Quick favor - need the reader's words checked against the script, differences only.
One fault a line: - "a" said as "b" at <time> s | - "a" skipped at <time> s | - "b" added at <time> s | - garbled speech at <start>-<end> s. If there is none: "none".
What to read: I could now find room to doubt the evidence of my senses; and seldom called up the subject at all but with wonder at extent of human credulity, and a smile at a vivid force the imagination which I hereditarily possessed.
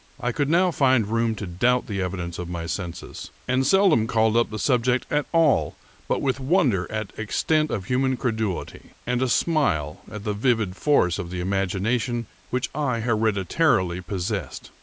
- "a" said as "the" at 10.2 s
- "of" added at 11.2 s